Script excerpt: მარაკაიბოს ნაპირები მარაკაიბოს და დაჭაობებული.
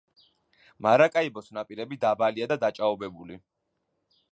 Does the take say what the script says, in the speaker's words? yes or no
no